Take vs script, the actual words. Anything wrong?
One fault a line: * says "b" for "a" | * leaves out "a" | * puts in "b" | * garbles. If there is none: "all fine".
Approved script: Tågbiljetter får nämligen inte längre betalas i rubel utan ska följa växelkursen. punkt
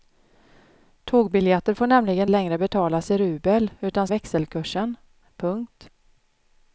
* leaves out "inte"
* leaves out "ska följa"